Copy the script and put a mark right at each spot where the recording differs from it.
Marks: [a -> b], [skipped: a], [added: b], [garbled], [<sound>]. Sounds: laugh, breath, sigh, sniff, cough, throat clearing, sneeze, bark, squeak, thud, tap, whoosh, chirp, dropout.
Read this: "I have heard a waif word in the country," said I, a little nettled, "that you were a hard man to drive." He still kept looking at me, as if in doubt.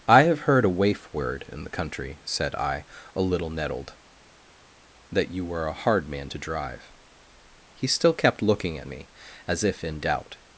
"I have heard a waif word in the country," said I, a little nettled, "that you were a hard man to drive." He still kept looking at me, as if in doubt.